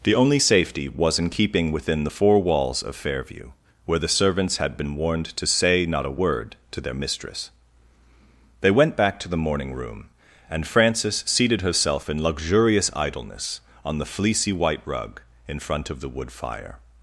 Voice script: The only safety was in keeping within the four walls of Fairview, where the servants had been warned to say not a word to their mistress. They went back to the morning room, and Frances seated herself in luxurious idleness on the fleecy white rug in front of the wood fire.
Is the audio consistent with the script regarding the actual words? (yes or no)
yes